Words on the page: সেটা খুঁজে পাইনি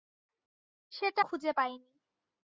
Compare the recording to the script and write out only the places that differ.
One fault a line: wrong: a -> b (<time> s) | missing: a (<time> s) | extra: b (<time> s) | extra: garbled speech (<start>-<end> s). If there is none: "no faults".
no faults